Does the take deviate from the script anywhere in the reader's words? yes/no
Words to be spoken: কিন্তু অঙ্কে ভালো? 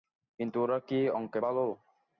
yes